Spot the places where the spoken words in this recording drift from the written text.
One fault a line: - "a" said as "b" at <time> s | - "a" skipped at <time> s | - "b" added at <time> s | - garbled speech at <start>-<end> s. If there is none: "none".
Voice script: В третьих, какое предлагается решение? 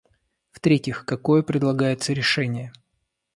none